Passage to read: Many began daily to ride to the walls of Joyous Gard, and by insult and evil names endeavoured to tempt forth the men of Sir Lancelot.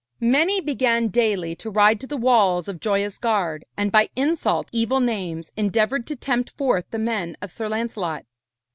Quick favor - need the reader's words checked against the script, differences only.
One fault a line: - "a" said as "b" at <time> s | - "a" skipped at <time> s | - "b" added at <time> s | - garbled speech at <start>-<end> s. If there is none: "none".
- "and" skipped at 4.7 s